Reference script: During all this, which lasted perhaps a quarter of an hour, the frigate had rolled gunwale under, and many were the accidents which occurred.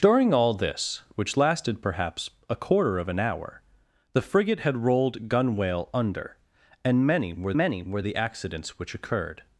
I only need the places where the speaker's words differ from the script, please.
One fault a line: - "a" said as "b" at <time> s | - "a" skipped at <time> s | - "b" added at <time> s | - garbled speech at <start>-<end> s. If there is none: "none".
- "many were" added at 7.5 s